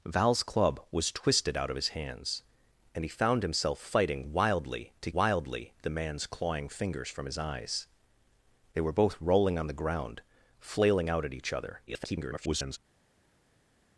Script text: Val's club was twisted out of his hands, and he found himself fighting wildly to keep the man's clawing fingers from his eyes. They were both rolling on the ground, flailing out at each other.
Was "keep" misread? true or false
true